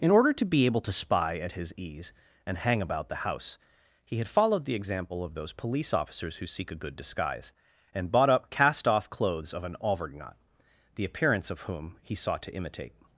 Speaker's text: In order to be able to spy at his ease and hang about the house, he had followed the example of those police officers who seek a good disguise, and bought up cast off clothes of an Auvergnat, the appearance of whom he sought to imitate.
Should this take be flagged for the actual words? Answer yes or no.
no